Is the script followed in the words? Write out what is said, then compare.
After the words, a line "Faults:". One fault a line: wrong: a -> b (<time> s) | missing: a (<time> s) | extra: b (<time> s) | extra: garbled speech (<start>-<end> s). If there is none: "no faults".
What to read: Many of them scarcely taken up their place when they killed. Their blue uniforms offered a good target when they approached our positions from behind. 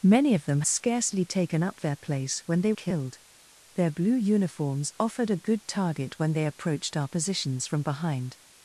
Many of them scarcely taken up their place when they killed. Their blue uniforms offered a good target when they approached our positions from behind.
Faults:
no faults